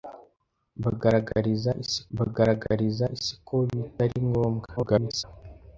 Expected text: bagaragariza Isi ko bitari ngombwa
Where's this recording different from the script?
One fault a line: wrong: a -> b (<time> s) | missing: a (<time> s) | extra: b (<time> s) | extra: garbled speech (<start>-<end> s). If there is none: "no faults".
extra: bagaragariza Isi (2.2 s)
extra: garbled speech (4.8-5.2 s)